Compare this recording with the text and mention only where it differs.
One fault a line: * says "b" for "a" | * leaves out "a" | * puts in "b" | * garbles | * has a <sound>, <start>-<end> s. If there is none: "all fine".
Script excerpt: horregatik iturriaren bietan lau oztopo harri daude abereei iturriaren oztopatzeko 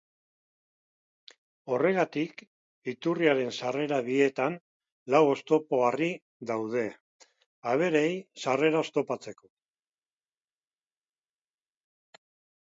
* puts in "sarrera"
* says "sarrera" for "iturriaren"